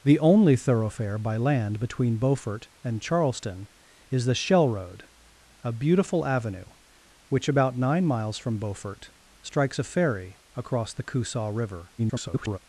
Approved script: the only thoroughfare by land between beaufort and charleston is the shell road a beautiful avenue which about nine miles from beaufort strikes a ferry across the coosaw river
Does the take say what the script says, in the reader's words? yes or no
no